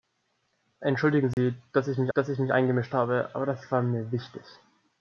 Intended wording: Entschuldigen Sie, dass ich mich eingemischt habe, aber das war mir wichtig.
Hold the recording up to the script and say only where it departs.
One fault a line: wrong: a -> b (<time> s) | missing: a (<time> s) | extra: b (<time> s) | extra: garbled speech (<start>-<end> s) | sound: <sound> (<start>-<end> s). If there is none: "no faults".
sound: dropout (1.3-1.4 s)
extra: dass ich mich (2.1 s)